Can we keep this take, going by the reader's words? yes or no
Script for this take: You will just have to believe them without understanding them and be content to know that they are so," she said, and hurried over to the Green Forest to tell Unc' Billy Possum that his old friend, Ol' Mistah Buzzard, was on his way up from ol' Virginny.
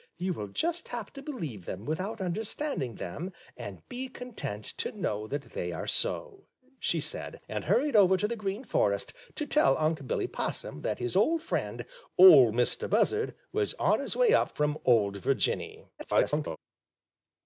no